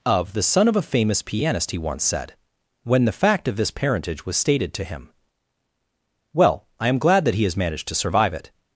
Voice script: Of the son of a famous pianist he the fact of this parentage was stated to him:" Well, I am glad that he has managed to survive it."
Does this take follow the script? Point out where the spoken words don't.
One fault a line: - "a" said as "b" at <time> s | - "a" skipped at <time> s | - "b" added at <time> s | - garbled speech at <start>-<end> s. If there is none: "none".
- "once said when" added at 1.8 s